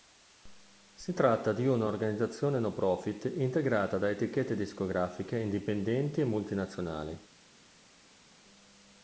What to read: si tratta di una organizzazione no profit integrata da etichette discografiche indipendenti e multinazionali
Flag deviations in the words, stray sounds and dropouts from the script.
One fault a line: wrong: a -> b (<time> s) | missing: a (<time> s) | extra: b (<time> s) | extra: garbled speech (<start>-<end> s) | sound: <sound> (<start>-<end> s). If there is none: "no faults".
no faults